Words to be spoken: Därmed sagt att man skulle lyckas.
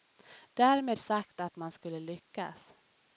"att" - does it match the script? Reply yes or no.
yes